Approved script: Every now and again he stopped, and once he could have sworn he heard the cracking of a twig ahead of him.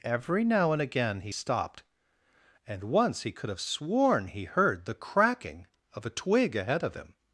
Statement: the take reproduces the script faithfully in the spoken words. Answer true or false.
true